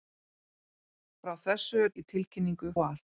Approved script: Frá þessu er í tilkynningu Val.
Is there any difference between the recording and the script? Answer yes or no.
no